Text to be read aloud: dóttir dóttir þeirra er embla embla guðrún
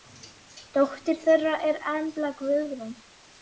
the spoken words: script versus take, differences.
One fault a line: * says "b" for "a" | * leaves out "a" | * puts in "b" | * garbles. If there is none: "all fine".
* leaves out "dóttir"
* leaves out "embla"